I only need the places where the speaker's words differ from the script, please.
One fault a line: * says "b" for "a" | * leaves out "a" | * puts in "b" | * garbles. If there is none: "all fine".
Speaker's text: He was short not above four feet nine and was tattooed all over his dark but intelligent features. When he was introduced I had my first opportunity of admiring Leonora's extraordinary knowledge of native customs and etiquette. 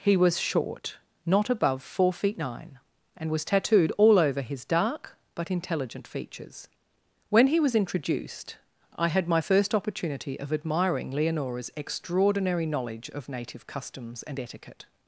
all fine